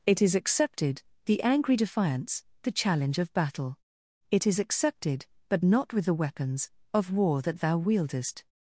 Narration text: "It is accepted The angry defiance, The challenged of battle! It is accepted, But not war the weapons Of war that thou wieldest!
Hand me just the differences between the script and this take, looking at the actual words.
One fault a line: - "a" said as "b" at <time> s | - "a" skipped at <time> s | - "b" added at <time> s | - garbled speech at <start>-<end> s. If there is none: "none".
- "challenged" said as "challenge" at 2.7 s
- "war" said as "with" at 5.9 s